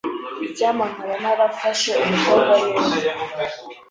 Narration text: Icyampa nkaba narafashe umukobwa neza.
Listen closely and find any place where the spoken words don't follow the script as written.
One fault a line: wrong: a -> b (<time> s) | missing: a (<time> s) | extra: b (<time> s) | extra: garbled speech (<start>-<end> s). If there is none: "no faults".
no faults